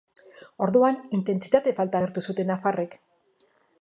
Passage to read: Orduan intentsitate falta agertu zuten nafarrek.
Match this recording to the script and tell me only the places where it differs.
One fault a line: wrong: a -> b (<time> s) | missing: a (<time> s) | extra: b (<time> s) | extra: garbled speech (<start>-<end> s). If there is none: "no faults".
no faults